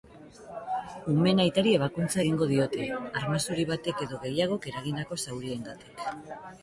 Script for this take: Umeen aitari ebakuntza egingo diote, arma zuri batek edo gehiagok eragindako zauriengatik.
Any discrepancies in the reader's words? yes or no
no